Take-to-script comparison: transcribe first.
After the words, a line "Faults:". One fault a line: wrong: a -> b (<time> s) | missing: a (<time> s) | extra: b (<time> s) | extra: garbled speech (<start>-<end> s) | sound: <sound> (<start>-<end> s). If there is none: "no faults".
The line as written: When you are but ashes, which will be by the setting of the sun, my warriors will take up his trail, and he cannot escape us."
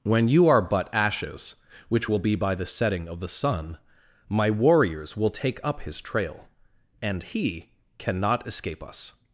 When you are but ashes, which will be by the setting of the sun, my warriors will take up his trail, and he cannot escape us."
Faults:
no faults